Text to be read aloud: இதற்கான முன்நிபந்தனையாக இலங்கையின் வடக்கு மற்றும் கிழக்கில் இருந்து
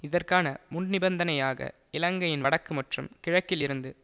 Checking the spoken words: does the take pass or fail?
pass